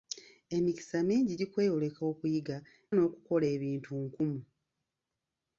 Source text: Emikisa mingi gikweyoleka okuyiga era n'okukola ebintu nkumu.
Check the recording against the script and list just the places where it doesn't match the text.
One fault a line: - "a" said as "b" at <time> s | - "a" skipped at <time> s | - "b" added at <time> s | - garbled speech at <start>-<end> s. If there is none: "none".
- "era" skipped at 2.6 s